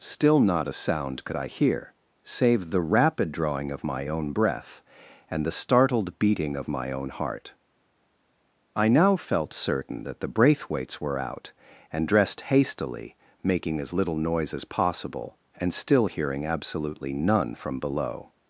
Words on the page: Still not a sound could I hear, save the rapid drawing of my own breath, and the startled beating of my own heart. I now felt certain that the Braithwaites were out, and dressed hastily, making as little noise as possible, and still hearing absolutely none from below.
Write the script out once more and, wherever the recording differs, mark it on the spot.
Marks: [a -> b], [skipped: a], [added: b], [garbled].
Still not a sound could I hear, save the rapid drawing of my own breath, and the startled beating of my own heart. I now felt certain that the Braithwaites were out, and dressed hastily, making as little noise as possible, and still hearing absolutely none from below.